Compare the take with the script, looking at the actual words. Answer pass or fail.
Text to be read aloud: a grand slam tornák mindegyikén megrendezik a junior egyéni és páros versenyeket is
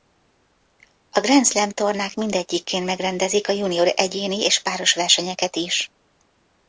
pass